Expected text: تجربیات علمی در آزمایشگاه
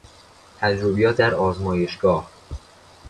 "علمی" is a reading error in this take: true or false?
true